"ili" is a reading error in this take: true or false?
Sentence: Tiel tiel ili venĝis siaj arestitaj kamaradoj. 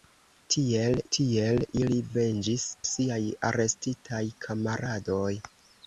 false